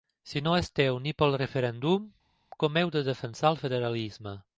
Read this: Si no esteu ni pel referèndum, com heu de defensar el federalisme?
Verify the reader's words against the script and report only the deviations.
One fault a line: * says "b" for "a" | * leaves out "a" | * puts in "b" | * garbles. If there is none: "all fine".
all fine